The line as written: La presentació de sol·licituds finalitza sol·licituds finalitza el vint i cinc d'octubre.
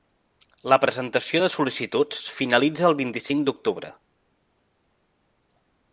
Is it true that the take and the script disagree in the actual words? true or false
true